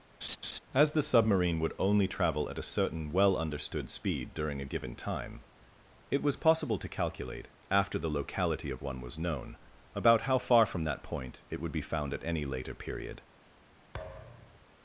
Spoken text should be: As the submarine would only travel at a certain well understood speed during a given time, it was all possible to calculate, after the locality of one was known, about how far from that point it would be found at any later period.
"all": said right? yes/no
no